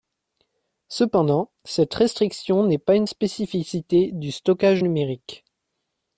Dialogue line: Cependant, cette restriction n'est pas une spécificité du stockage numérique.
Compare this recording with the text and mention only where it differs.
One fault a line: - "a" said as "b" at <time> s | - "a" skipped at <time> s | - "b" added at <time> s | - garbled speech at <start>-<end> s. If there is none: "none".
none